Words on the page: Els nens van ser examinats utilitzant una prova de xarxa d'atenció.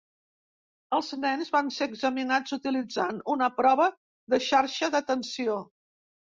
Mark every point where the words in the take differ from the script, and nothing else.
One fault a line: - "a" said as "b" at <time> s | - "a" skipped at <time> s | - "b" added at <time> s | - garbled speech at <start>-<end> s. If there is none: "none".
none